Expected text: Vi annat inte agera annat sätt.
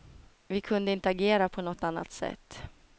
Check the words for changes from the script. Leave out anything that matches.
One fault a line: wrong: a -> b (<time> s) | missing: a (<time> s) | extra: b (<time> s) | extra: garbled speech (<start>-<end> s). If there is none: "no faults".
wrong: annat -> kunde (0.6 s)
extra: på något (1.5 s)